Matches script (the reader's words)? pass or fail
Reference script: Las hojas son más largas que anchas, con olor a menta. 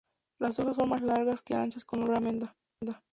pass